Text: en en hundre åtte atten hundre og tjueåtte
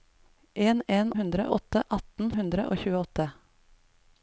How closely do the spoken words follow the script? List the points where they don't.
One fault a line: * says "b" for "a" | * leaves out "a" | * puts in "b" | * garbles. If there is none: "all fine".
all fine